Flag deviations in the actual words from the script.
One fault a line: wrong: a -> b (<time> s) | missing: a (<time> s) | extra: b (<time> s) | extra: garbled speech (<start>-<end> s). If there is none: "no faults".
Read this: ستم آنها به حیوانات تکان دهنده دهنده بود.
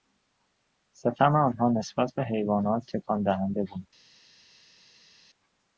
extra: نسبت (1.7 s)
missing: دهنده (3.6 s)